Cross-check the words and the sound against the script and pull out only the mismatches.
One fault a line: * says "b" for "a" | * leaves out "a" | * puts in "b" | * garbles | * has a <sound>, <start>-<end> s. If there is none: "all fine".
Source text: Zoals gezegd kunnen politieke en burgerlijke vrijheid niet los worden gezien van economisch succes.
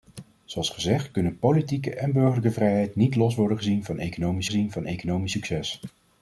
* puts in "gezien van economisch"